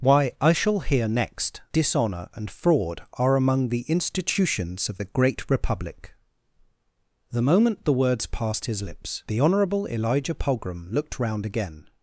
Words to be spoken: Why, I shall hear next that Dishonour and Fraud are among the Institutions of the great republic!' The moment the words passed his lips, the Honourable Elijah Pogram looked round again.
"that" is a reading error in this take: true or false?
true